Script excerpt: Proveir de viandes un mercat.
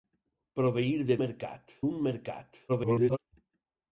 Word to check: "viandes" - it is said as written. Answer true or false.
false